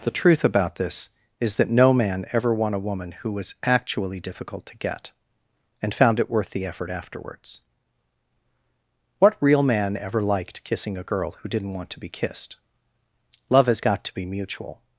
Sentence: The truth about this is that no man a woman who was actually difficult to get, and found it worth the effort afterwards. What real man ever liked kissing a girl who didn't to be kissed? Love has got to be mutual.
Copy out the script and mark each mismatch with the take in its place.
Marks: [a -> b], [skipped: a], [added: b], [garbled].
The truth about this is that no man [added: ever won] a woman who was actually difficult to get, and found it worth the effort afterwards. What real man ever liked kissing a girl who didn't [added: want] to be kissed? Love has got to be mutual.